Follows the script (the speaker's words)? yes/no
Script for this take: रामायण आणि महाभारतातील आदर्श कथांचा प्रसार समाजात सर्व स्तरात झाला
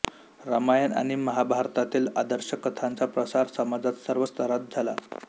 yes